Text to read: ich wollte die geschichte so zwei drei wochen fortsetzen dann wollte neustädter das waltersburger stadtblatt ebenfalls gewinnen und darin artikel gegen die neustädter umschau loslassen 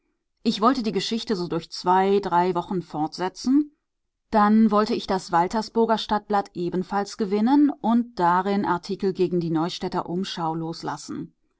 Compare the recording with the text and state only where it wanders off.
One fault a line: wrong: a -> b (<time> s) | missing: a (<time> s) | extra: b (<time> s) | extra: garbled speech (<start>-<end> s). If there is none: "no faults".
extra: durch (1.5 s)
wrong: neustädter -> ich (4.9 s)